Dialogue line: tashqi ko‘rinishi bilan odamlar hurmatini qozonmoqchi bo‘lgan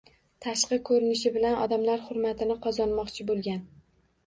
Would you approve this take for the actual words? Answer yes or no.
yes